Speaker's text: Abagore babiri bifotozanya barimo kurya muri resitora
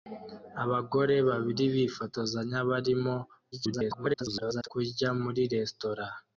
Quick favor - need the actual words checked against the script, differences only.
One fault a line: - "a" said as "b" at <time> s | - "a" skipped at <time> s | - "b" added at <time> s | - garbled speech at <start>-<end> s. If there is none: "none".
- garbled speech at 3.5-4.7 s